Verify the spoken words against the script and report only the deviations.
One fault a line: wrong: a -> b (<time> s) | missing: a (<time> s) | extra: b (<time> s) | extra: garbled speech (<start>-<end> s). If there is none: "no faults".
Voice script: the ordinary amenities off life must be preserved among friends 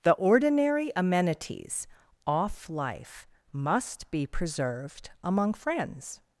no faults